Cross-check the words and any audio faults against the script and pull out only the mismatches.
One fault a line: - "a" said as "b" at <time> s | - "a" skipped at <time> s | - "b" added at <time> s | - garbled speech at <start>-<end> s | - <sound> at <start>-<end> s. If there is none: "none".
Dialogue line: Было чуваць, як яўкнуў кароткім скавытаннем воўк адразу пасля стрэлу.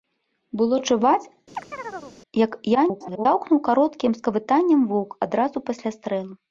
- chirp at 1.5-2.2 s
- garbled speech at 2.7-3.3 s